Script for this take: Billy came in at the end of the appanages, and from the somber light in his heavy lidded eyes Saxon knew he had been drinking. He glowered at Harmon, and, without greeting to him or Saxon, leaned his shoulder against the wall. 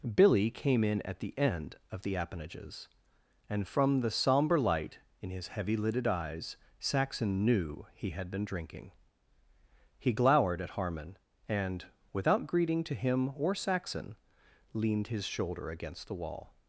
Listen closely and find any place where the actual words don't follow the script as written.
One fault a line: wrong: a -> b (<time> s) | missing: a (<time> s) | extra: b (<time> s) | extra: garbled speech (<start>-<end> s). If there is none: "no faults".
no faults